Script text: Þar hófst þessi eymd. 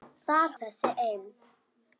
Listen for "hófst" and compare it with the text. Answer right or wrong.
wrong